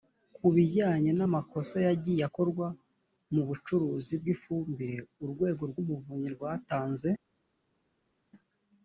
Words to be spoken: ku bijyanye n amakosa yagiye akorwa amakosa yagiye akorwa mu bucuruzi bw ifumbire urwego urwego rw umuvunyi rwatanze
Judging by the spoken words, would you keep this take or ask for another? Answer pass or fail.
fail